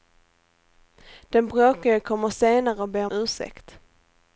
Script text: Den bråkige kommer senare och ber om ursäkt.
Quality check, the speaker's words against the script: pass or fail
fail